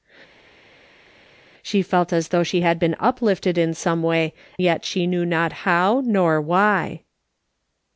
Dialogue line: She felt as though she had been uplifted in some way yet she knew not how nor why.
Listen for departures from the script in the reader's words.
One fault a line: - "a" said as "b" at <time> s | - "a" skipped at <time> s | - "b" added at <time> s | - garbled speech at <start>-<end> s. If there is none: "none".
none